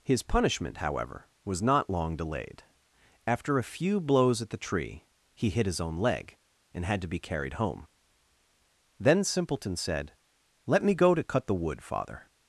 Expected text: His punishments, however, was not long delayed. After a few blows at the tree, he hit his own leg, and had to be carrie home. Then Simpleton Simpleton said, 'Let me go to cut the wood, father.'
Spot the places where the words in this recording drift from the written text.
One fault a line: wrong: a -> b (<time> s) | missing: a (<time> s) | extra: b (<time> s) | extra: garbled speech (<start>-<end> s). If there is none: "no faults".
wrong: punishments -> punishment (0.2 s)
wrong: carrie -> carried (7.2 s)
missing: Simpleton (9.8 s)